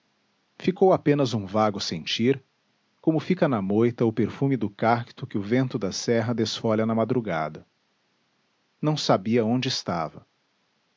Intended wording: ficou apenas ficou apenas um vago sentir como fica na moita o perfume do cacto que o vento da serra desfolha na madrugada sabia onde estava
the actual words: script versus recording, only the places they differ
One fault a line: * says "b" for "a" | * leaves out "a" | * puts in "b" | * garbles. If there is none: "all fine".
* leaves out "ficou apenas"
* puts in "não"